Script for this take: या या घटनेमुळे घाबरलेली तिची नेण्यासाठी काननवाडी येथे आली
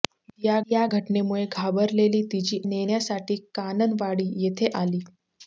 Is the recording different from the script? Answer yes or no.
no